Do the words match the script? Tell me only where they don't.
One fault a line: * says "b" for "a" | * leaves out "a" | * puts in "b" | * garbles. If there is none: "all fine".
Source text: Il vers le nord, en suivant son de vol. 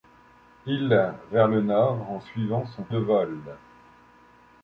all fine